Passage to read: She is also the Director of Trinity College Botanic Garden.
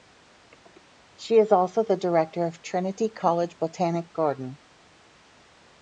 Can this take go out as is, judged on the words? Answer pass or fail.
pass